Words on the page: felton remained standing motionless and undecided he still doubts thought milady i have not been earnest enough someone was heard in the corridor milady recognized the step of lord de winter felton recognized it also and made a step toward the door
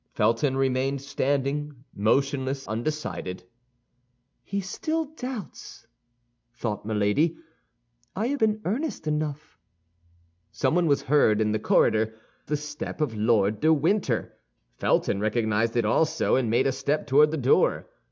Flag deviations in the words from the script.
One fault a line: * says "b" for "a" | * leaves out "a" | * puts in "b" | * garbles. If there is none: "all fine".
* leaves out "and"
* leaves out "not"
* leaves out "milady recognized"